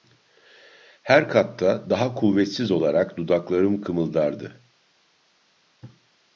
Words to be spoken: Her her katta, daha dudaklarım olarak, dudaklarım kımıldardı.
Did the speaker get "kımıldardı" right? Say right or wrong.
right